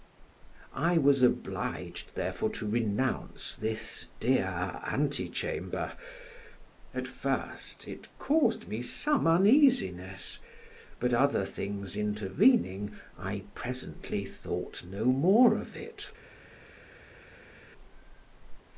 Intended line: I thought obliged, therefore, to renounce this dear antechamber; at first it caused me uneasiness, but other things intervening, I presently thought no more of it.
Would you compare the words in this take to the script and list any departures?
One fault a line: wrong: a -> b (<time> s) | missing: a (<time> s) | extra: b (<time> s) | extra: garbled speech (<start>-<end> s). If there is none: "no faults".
wrong: thought -> was (1.0 s)
extra: some (8.8 s)